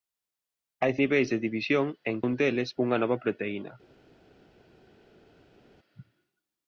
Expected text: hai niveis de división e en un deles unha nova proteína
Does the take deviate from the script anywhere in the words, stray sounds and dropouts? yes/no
no